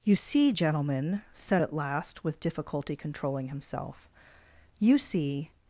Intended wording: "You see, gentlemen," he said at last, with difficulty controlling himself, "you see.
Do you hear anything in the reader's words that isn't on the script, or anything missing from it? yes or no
yes